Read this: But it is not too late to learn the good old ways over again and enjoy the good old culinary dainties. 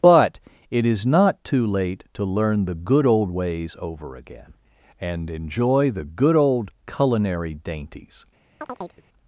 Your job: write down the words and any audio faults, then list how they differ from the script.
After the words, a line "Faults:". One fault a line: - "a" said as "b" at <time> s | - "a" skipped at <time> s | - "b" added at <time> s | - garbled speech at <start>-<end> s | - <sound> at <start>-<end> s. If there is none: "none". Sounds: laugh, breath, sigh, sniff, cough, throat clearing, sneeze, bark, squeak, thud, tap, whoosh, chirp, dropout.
But it is not too late to learn the good old ways over again and enjoy the good old culinary dainties.
Faults:
- chirp at 8.6-9.0 s